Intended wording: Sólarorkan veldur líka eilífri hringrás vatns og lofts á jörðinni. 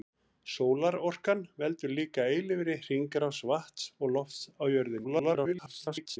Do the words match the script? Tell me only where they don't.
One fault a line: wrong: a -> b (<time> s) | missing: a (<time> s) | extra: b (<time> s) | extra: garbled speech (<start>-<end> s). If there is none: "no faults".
extra: garbled speech (5.0-6.2 s)